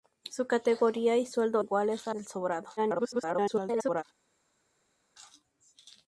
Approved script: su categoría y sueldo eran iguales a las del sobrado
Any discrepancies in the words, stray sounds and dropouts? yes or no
yes